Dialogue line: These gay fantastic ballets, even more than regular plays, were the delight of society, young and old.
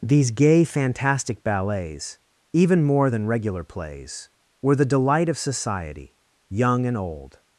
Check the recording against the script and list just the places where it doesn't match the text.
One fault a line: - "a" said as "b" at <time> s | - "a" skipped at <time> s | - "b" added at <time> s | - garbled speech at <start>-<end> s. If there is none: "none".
none